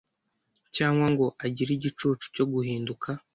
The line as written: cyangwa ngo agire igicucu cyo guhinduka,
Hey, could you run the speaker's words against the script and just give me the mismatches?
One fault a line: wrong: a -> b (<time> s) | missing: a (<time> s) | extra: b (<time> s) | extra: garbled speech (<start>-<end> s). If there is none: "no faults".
no faults